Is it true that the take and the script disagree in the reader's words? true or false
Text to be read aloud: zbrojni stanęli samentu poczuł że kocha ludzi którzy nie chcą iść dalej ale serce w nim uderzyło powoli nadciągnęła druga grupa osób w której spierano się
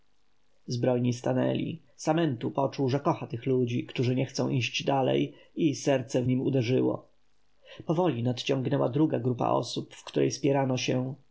true